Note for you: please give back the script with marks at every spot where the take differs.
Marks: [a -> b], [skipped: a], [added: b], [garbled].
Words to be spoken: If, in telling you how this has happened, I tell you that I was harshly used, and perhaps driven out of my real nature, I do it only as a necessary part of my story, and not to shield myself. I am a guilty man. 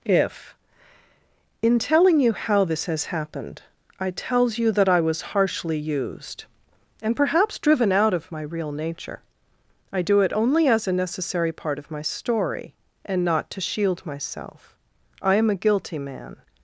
If, in telling you how this has happened, I [tell -> tells] you that I was harshly used, and perhaps driven out of my real nature, I do it only as a necessary part of my story, and not to shield myself. I am a guilty man.